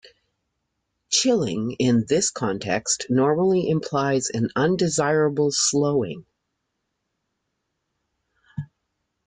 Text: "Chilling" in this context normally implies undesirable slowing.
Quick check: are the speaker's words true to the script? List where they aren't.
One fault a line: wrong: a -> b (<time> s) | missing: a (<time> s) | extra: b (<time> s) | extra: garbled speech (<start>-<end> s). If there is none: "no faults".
extra: an (4.3 s)